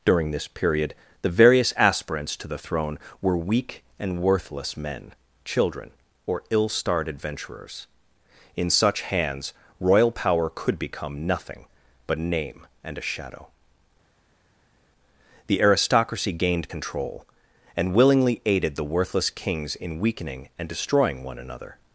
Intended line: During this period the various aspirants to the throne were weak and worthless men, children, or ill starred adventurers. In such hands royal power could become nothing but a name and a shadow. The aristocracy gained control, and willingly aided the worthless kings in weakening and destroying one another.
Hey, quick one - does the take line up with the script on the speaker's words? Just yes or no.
no